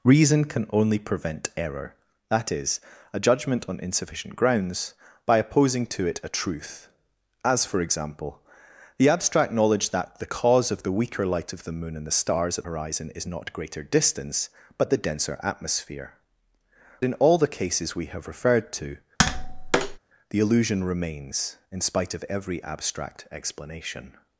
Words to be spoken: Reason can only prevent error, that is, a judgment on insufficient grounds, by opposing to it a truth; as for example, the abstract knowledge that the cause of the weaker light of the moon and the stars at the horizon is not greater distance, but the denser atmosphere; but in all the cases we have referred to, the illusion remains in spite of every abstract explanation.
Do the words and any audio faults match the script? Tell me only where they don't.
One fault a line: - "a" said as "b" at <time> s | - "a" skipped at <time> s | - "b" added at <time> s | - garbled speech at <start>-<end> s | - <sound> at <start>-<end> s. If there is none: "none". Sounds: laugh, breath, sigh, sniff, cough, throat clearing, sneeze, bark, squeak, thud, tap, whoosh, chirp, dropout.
- "the" skipped at 12.6 s
- "but" skipped at 16.1 s
- tap at 19.2-20.0 s